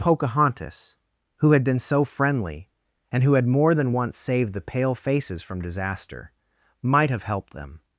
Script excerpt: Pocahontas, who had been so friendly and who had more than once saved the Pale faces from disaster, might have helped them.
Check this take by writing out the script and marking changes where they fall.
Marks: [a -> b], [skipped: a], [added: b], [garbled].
Pocahontas, who had been so friendly and who had more than once saved the Pale faces from disaster, might have helped them.